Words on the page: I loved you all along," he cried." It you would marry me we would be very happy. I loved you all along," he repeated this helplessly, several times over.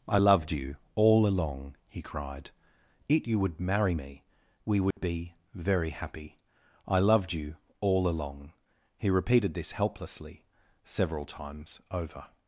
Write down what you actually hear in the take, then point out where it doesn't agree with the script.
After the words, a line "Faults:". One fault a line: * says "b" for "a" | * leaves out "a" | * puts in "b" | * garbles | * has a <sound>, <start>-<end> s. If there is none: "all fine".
I loved you all along," he cried." It you would marry me we would be very happy. I loved you all along," he repeated this helplessly, several times over.
Faults:
* has a dropout, 4.9-5.0 s